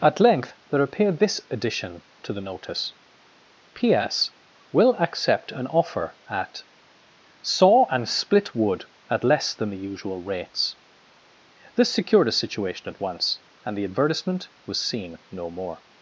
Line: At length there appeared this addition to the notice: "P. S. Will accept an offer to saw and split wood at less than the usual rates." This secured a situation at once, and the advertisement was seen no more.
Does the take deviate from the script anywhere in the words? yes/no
yes